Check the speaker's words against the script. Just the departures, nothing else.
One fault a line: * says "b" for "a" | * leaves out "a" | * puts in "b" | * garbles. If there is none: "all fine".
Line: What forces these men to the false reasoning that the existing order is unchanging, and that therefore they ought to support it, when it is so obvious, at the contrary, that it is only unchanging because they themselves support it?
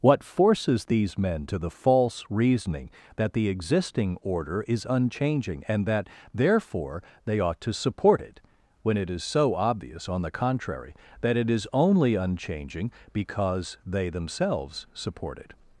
* says "on" for "at"